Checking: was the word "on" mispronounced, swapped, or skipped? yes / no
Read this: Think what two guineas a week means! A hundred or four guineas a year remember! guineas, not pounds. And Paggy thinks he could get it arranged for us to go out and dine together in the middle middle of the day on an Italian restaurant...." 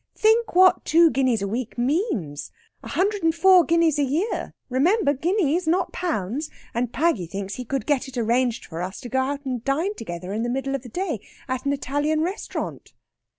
yes